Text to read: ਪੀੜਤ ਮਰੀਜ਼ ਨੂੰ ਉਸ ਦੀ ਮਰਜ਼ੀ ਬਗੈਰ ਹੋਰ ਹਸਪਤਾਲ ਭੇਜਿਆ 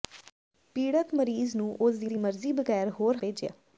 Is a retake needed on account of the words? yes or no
yes